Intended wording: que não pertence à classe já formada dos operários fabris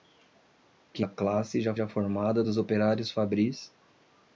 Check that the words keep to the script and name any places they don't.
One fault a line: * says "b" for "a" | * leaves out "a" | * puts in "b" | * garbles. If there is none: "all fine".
* leaves out "não pertence"
* puts in "já"